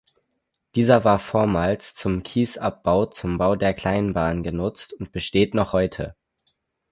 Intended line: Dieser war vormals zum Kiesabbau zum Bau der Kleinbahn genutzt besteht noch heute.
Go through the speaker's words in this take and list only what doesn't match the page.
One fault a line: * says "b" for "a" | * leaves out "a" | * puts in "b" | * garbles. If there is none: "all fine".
* puts in "und"